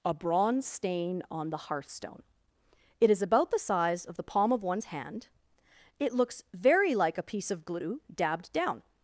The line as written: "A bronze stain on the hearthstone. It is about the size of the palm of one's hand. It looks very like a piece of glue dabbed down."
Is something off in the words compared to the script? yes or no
no